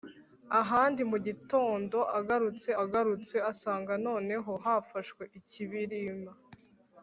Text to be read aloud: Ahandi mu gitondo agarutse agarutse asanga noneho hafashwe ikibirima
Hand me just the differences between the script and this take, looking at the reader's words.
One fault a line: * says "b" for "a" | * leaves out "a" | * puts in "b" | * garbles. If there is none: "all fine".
all fine